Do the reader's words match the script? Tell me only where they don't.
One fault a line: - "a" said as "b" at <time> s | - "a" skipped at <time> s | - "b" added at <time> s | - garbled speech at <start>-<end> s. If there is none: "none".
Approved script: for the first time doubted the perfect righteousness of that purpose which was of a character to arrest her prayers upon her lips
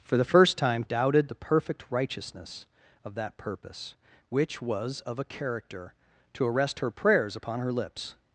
none